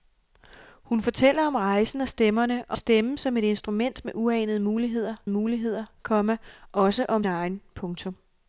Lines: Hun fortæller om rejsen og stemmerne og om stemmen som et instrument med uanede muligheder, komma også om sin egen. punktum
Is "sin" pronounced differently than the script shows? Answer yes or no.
yes